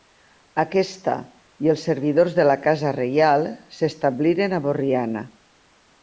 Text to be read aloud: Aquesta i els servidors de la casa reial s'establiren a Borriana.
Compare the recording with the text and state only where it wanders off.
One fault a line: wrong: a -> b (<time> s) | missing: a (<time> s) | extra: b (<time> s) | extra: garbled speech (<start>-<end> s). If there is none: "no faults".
no faults